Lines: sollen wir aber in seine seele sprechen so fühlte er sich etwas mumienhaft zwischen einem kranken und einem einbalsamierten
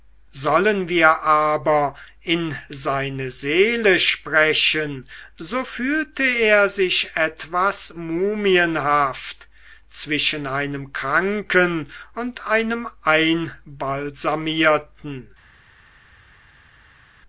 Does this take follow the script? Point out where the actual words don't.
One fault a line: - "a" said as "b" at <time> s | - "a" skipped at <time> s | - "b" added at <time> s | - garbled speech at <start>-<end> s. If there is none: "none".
none